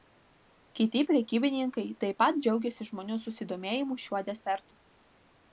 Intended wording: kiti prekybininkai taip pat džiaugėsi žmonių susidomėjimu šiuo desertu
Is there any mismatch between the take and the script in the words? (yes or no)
no